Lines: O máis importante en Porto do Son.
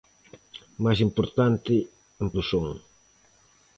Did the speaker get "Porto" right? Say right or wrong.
wrong